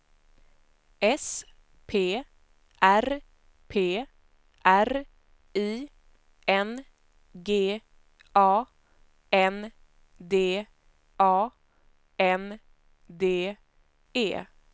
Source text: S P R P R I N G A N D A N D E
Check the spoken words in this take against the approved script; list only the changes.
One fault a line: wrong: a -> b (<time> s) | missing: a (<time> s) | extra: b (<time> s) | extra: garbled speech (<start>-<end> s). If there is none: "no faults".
no faults